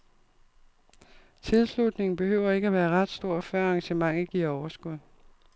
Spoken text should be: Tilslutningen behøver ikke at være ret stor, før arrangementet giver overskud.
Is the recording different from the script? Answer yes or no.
no